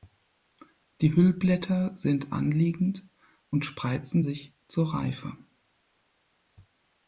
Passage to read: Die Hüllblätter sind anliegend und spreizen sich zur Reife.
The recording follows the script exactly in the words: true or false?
true